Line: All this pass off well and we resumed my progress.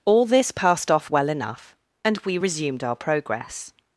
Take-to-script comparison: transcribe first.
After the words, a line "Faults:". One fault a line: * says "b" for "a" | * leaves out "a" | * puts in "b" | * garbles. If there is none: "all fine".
All this passed off well enough, and we resumed our progress.
Faults:
* says "passed" for "pass"
* puts in "enough"
* says "our" for "my"